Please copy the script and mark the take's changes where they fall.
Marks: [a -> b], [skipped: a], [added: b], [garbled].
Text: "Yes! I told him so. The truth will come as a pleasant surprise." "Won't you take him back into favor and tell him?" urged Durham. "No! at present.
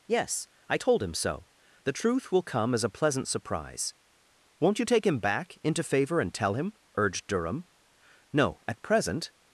"Yes! I told him so. The truth will come as a pleasant surprise." "Won't you take him back into favor and tell him?" urged Durham. "No! at present.